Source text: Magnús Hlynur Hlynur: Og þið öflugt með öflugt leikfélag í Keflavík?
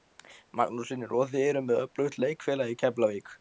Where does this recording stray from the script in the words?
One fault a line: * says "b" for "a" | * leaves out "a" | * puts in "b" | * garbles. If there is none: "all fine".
* leaves out "Hlynur"
* says "eruð" for "öflugt"